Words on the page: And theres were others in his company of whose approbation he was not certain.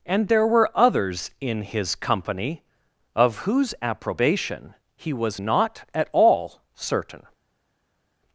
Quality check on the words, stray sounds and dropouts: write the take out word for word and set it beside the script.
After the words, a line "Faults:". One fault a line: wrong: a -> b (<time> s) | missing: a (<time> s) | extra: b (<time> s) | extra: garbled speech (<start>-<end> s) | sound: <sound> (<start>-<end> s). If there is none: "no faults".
And there were others in his company of whose approbation he was not at all certain.
Faults:
wrong: theres -> there (0.3 s)
extra: at all (5.9 s)